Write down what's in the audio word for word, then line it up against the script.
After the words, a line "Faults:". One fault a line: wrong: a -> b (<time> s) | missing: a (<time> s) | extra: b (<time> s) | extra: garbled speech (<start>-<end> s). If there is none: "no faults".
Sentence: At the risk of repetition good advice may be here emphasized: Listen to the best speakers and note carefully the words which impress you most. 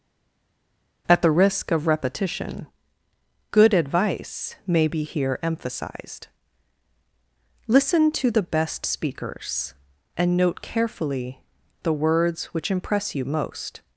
At the risk of repetition good advice may be here emphasized: Listen to the best speakers and note carefully the words which impress you most.
Faults:
no faults